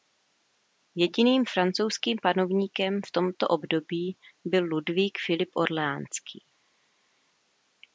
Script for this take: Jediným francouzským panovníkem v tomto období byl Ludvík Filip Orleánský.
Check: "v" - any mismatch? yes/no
no